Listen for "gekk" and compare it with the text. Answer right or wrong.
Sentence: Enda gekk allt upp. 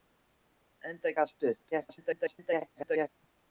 wrong